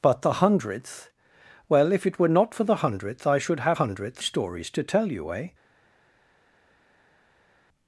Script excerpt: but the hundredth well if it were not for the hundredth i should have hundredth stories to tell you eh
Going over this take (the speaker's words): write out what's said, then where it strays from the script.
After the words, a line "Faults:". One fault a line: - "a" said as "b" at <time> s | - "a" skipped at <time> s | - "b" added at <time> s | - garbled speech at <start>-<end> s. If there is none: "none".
but the hundredth well if it were not for the hundredth i should have hundredth stories to tell you eh
Faults:
none